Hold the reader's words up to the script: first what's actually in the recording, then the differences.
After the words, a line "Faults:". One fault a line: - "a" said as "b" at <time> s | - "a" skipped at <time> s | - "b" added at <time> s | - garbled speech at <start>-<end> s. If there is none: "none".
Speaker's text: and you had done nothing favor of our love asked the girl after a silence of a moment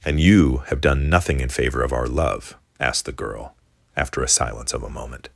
and you have done nothing in favor of our love asked the girl after a silence of a moment
Faults:
- "had" said as "have" at 0.7 s
- "in" added at 1.4 s